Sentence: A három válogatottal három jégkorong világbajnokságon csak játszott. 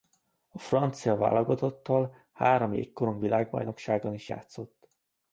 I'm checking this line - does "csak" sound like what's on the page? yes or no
no